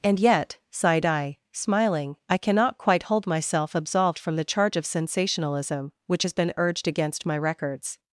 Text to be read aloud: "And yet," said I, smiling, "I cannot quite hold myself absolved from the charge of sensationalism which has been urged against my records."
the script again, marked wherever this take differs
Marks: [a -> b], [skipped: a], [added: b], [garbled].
"And yet," [said -> sighed] I, smiling, "I cannot quite hold myself absolved from the charge of sensationalism which has been urged against my records."